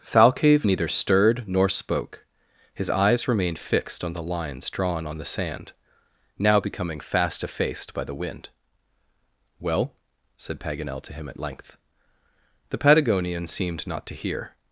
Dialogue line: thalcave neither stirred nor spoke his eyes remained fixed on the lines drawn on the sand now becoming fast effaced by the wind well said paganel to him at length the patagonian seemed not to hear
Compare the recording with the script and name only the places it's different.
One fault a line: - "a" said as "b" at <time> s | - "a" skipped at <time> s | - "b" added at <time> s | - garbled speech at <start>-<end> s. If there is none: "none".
none